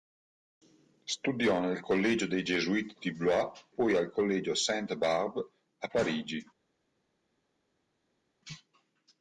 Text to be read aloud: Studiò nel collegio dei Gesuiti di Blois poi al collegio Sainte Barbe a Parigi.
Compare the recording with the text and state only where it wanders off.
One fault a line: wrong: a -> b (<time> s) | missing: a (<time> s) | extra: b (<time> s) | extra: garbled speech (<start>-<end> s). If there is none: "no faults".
no faults